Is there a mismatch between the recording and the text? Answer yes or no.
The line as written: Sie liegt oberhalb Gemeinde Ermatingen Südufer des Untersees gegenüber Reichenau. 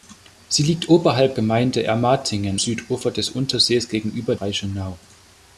no